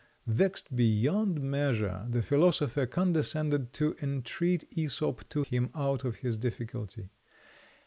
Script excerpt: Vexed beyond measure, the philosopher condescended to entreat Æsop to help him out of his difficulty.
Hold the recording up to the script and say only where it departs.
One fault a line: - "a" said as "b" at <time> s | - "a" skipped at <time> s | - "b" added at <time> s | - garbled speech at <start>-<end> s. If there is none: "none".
- "help" skipped at 5.4 s